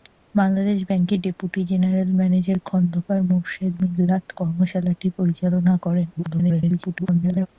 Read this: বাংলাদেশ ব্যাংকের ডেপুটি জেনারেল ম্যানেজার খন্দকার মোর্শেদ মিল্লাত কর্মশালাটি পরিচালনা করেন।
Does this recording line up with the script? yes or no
no